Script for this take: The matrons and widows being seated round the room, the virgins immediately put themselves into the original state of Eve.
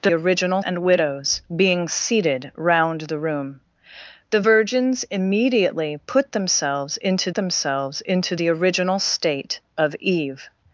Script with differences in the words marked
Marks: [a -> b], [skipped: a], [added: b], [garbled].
The [matrons -> original] and widows being seated round the room, the virgins immediately put themselves into [added: themselves into] the original state of Eve.